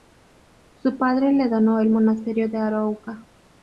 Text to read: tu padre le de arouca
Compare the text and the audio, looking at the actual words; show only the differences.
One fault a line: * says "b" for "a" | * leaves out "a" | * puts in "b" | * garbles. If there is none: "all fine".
* says "su" for "tu"
* puts in "donó el monasterio"